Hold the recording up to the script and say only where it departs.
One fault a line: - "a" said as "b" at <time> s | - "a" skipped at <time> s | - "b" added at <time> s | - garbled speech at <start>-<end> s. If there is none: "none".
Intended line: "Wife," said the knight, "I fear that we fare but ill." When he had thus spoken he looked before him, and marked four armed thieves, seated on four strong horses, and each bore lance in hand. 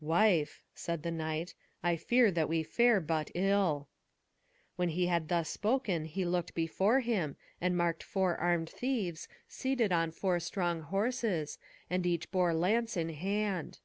none